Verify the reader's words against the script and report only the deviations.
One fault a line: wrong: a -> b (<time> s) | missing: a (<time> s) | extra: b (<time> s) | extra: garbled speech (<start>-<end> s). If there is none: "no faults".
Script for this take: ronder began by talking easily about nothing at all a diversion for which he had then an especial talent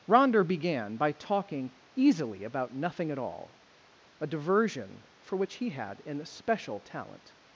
missing: then (6.0 s)